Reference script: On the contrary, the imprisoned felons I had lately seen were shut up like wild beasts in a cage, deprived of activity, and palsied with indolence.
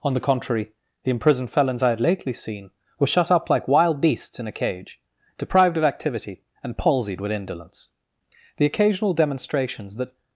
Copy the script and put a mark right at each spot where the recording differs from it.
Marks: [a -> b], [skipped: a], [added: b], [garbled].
On the contrary, the imprisoned felons I had lately seen were shut up like wild beasts in a cage, deprived of activity, and palsied with indolence. [added: The occasional demonstrations that]